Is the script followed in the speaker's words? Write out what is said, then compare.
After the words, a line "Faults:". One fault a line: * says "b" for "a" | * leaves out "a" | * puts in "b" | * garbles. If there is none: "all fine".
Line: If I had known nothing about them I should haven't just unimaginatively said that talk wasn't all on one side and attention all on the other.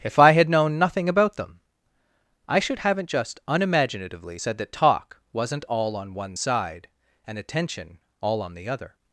If I had known nothing about them I should haven't just unimaginatively said that talk wasn't all on one side and attention all on the other.
Faults:
all fine